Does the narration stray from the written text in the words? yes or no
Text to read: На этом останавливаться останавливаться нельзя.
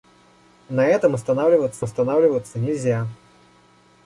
no